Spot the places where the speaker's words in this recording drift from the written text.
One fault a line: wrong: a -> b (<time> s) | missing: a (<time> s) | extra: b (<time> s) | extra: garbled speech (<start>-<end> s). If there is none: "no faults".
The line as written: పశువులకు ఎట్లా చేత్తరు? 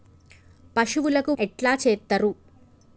no faults